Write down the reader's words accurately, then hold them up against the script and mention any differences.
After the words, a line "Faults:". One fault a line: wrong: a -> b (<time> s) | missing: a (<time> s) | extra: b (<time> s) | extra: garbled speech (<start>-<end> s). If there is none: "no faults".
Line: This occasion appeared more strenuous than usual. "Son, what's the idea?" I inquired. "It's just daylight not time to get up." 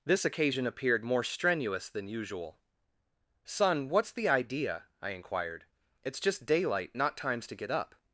This occasion appeared more strenuous than usual. "Son, what's the idea?" I inquired. "It's just daylight not times to get up."
Faults:
wrong: time -> times (7.2 s)